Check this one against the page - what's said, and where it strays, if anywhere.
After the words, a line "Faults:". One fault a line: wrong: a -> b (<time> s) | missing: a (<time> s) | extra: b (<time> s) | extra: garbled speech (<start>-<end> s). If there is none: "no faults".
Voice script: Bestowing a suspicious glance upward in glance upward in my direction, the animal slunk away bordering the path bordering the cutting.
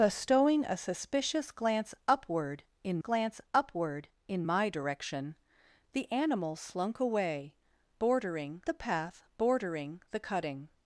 Bestowing a suspicious glance upward in glance upward in my direction, the animal slunk away bordering the path bordering the cutting.
Faults:
no faults